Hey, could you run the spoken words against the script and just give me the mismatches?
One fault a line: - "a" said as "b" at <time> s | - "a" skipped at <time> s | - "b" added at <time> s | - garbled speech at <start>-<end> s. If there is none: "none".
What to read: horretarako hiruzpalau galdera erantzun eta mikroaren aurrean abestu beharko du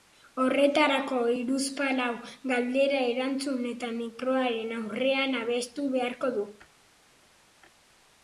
none